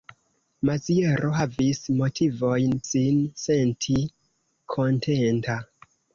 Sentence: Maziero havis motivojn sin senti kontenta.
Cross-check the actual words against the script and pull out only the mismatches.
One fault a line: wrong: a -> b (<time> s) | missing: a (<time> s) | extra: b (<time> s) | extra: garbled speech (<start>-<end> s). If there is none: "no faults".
no faults